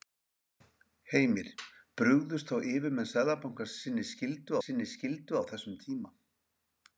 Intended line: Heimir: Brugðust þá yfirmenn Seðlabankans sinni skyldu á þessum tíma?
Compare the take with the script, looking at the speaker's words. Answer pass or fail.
fail